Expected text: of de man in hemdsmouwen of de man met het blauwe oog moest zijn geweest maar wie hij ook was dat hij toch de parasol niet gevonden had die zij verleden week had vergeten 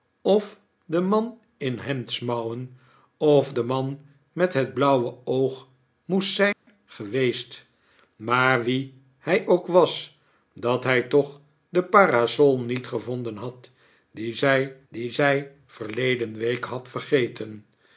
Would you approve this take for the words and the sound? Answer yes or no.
no